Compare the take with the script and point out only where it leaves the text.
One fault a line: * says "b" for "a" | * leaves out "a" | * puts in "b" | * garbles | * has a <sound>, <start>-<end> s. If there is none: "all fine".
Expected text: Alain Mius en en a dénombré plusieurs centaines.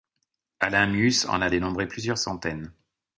* leaves out "en"